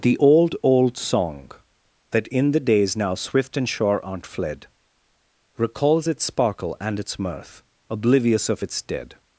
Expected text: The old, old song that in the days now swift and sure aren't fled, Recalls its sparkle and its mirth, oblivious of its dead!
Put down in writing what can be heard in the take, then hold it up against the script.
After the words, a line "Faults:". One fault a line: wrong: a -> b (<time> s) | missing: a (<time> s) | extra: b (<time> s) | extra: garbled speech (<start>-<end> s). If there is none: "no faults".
The old, old song that in the days now swift and sure aren't fled, Recalls its sparkle and its mirth, oblivious of its dead!
Faults:
no faults